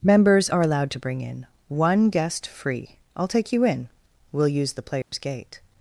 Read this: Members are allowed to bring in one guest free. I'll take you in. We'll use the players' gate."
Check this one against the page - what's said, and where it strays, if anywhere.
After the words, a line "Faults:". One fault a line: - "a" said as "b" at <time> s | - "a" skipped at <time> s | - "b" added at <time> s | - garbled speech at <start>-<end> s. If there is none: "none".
Members are allowed to bring in one guest free. I'll take you in. We'll use the players' gate."
Faults:
none